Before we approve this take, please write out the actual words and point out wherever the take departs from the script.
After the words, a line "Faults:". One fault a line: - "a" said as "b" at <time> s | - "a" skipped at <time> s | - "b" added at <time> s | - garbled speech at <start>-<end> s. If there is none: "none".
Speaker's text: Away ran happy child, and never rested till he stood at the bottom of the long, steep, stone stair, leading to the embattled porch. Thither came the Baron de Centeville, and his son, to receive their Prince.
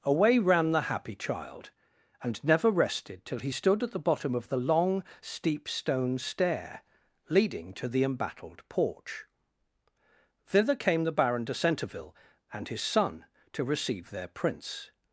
Away ran the happy child, and never rested till he stood at the bottom of the long, steep, stone stair, leading to the embattled porch. Thither came the Baron de Centeville, and his son, to receive their Prince.
Faults:
- "the" added at 0.7 s